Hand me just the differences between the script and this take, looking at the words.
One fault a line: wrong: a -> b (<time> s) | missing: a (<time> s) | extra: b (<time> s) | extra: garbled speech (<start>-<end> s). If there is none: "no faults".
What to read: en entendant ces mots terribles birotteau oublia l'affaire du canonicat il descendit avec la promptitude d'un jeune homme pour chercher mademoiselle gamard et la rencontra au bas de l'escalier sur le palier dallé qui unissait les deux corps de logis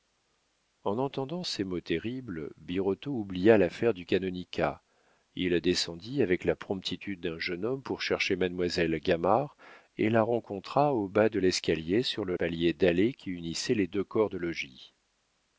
no faults